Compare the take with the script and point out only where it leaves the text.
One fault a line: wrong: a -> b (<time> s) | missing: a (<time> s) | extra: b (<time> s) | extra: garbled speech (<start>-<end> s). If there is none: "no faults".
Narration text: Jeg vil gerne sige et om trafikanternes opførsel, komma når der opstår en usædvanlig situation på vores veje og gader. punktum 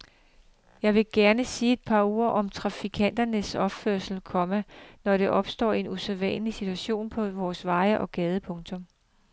extra: par ord (1.9 s)